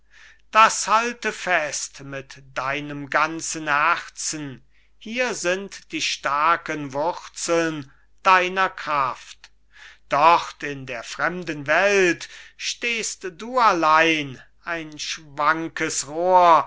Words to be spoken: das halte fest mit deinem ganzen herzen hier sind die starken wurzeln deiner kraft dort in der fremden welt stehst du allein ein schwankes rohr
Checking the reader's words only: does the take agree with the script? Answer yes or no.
yes